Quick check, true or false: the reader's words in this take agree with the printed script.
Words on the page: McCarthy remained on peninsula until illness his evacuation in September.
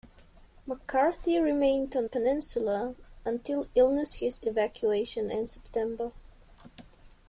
true